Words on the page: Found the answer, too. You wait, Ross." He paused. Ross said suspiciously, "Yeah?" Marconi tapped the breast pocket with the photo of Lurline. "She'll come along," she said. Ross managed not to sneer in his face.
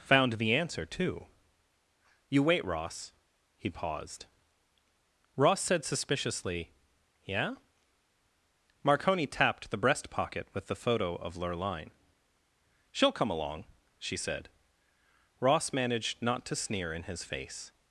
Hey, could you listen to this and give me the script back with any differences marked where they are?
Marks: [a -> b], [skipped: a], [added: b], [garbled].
Found the answer, too. You wait, Ross." He paused. Ross said suspiciously, "Yeah?" Marconi tapped the breast pocket with the photo of Lurline. "She'll come along," she said. Ross managed not to sneer in his face.